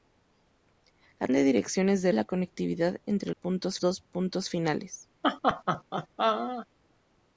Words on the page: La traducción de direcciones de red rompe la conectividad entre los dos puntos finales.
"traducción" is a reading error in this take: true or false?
true